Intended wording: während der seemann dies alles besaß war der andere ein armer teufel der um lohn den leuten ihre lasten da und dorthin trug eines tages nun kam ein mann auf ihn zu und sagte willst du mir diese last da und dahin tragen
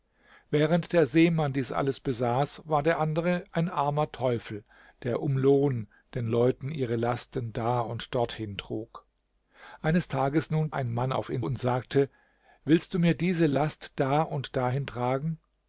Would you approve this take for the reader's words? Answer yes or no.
no